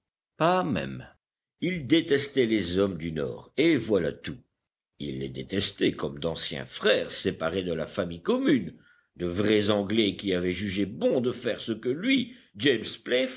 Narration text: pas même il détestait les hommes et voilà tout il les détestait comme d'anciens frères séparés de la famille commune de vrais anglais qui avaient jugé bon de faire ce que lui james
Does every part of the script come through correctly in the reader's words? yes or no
no